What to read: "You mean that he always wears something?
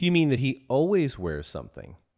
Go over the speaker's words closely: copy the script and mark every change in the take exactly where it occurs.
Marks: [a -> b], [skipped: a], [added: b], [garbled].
"You mean that he always wears something?